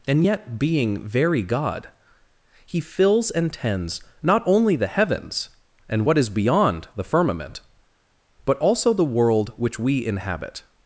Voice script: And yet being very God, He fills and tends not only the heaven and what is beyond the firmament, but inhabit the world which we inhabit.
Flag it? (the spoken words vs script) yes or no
yes